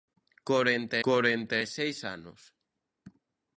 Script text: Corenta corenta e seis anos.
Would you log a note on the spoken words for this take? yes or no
no